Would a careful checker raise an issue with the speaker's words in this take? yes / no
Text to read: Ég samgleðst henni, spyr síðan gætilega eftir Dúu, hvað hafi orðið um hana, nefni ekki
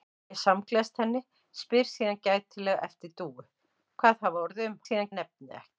yes